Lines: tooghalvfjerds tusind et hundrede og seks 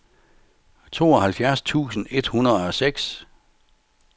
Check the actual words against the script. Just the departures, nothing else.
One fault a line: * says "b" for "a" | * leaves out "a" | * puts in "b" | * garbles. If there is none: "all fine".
all fine